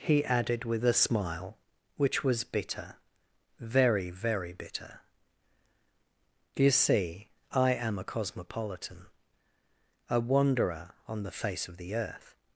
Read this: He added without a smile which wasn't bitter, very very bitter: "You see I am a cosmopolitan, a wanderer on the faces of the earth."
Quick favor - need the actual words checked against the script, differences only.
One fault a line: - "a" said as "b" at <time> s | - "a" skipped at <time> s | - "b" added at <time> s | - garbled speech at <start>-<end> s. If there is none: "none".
- "without" said as "with" at 0.7 s
- "wasn't" said as "was" at 2.2 s
- "faces" said as "face" at 11.4 s